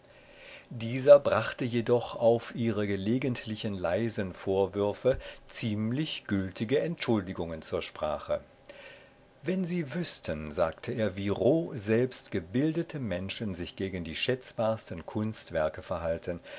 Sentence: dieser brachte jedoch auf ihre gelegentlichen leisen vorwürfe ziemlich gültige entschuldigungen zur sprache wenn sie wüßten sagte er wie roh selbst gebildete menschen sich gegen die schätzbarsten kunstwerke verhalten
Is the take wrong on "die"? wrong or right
right